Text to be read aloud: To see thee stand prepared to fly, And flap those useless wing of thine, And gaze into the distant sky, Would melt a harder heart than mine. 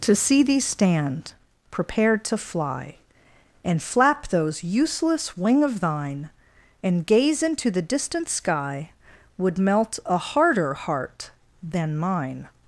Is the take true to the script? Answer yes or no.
yes